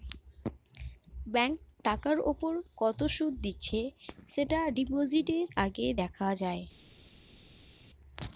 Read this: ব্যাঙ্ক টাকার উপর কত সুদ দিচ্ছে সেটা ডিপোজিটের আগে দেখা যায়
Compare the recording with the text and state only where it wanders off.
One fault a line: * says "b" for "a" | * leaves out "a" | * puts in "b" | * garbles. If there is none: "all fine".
all fine